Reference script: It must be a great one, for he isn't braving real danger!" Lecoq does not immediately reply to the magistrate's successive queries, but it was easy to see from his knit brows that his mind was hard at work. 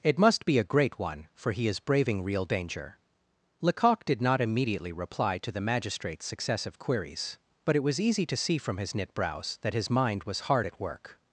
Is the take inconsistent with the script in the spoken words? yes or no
yes